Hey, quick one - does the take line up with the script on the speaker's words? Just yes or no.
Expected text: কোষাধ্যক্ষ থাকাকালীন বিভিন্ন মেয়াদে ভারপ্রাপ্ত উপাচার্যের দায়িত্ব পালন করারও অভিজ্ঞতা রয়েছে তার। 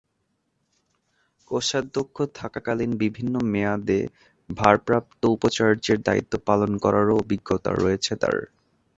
yes